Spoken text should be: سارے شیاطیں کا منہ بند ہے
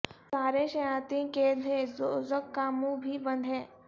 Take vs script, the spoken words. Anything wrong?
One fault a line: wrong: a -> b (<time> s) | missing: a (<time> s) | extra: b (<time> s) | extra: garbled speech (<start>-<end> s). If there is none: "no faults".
extra: قید ہیں دوزخ (1.3 s)
extra: بھی (3.0 s)